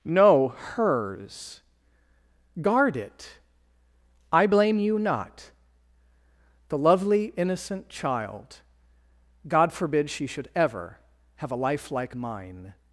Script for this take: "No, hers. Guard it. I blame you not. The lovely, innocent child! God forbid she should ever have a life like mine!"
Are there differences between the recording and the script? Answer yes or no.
no